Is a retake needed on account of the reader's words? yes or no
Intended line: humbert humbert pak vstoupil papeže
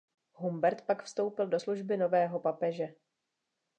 yes